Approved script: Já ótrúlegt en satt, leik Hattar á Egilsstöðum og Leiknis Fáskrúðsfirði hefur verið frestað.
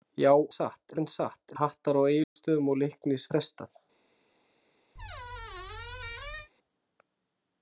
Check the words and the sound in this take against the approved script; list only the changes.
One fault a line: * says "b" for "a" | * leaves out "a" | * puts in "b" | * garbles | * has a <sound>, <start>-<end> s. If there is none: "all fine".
* says "satt" for "ótrúlegt"
* leaves out "leik"
* has a dropout, 2.2-2.4 s
* leaves out "Fáskrúðsfirði hefur verið"
* has a squeak, 4.9-6.5 s